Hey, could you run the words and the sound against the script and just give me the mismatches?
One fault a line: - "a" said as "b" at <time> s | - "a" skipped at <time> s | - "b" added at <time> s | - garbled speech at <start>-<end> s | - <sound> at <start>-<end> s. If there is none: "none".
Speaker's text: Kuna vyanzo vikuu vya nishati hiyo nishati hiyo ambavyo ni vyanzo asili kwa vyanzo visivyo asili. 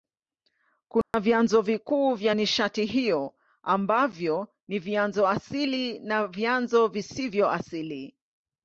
- dropout at 1.0-1.1 s
- "nishati hiyo" skipped at 3.3 s
- "kwa" said as "na" at 6.0 s